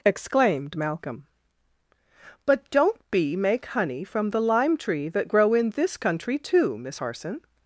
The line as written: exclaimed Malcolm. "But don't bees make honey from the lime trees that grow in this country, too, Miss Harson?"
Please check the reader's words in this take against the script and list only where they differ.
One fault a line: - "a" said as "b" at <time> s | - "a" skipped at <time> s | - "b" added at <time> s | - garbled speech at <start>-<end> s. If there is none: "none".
- "bees" said as "bee" at 3.1 s
- "trees" said as "tree" at 4.8 s